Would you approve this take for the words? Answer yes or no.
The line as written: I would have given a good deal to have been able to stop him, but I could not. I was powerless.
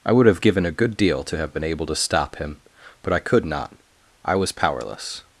yes